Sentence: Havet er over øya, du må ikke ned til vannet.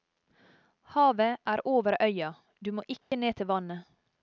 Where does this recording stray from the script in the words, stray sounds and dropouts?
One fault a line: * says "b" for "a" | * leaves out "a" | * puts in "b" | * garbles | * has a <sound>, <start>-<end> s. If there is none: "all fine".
* has a dropout, 3.0-3.1 s